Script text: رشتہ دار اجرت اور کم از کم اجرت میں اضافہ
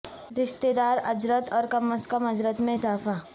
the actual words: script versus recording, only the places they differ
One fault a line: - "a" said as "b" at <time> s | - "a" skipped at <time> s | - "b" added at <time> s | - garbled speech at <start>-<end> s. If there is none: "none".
none